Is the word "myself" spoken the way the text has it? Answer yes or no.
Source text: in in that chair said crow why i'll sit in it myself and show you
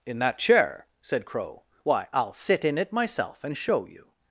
yes